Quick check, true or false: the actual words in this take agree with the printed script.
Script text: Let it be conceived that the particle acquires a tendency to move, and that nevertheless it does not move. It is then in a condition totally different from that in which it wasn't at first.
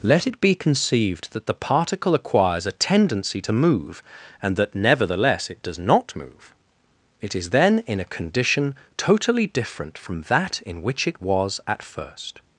false